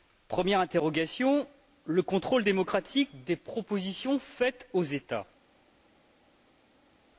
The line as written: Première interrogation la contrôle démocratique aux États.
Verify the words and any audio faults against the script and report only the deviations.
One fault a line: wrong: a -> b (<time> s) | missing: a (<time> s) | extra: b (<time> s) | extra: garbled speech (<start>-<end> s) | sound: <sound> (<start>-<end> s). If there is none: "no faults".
wrong: la -> le (1.8 s)
extra: des propositions faites (3.2 s)